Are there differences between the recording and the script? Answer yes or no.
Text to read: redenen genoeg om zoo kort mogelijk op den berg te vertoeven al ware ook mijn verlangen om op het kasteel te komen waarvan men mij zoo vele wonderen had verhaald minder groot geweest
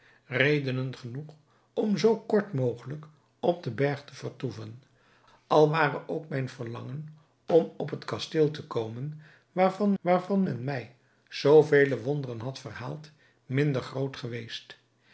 yes